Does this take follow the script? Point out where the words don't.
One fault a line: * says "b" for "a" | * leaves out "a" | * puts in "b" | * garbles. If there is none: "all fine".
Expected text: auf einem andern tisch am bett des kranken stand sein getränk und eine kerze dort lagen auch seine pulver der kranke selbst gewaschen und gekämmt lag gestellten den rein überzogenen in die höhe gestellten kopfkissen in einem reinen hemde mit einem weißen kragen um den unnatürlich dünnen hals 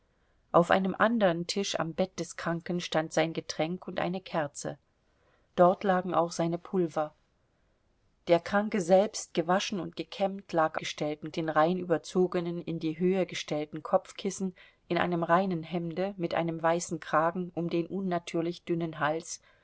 all fine